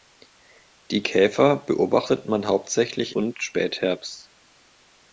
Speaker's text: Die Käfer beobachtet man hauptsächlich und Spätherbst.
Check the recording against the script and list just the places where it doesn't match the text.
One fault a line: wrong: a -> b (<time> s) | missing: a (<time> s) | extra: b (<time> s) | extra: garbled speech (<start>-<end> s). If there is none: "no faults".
no faults